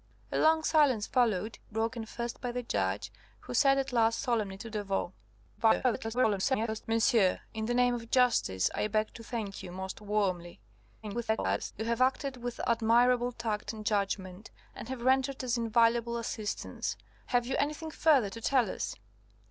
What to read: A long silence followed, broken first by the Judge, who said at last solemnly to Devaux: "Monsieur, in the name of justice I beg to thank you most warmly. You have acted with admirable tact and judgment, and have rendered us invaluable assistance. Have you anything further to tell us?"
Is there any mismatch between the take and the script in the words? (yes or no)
yes